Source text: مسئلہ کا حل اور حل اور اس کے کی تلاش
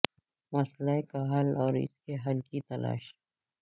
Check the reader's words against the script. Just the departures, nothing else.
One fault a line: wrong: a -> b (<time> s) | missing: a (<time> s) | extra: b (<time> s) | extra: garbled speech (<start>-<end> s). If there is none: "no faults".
missing: حل اور (1.7 s)
extra: حل (2.2 s)